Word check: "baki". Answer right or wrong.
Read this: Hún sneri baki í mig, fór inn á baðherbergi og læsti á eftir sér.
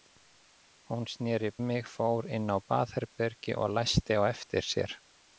wrong